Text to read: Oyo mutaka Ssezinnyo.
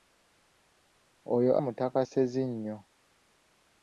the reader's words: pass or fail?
pass